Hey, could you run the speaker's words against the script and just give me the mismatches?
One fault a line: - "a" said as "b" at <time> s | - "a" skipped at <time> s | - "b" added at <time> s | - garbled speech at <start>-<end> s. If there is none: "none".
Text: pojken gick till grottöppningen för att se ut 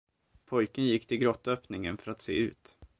none